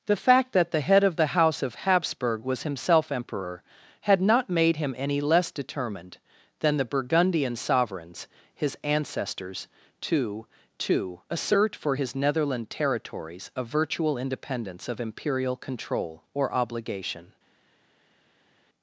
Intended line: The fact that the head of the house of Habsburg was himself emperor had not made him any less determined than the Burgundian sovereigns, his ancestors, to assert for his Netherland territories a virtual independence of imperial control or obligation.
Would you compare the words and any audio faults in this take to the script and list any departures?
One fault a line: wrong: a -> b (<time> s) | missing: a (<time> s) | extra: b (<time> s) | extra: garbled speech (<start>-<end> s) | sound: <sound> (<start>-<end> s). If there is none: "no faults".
extra: to (10.8 s)